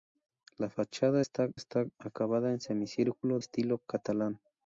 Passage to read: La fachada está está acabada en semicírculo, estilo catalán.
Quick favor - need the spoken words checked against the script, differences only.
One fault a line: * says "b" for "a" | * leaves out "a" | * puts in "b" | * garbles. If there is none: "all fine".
all fine